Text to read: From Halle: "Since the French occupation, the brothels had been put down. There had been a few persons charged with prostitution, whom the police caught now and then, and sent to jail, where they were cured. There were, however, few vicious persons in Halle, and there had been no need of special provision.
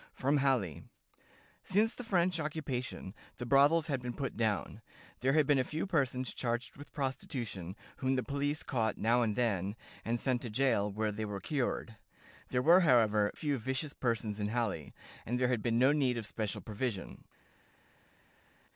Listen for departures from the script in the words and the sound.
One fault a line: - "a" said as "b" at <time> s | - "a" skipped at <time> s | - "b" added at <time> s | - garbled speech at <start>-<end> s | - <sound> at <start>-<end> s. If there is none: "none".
none